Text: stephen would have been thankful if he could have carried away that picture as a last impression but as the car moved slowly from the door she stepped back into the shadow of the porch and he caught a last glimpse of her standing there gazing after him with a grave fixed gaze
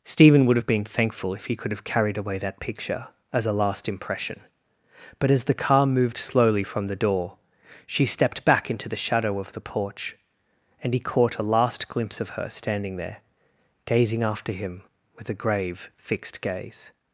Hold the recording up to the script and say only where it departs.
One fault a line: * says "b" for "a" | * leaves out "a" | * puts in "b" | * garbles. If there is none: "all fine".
all fine